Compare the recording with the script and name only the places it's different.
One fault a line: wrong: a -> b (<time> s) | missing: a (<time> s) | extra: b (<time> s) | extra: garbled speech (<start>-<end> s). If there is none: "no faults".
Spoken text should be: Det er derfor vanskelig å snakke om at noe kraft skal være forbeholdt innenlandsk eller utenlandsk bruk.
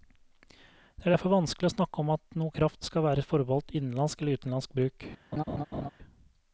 no faults